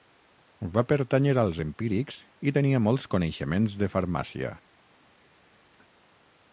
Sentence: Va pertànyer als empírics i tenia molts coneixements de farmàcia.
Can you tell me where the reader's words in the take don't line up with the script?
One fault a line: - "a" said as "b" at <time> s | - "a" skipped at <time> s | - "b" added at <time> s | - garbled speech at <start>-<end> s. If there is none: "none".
none